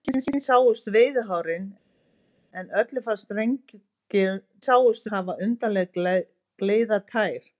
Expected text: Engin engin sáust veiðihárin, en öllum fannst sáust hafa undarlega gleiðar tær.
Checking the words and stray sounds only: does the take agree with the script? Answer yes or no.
yes